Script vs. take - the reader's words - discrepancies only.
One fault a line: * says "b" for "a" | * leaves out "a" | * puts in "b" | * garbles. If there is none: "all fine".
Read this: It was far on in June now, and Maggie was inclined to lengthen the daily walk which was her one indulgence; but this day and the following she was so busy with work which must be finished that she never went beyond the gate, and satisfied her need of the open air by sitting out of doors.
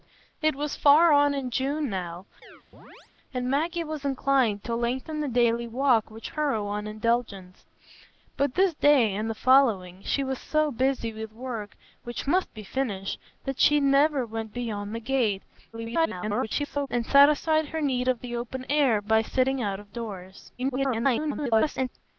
* leaves out "was"
* garbles
* garbles